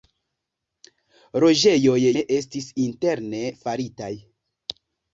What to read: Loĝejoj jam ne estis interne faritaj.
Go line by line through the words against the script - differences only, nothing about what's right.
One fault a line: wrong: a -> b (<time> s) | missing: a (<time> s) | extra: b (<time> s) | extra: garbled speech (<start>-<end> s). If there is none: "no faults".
missing: jam (2.0 s)